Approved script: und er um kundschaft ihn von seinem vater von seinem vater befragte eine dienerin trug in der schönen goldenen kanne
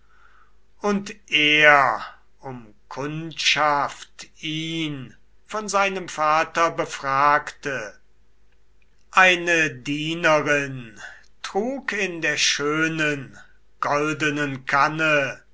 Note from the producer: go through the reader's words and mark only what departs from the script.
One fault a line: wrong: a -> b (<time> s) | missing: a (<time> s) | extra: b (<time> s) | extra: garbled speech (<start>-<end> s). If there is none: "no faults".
missing: von seinem vater (6.7 s)